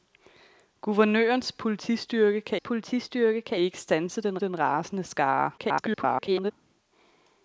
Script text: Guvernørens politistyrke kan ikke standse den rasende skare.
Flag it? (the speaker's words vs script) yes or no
yes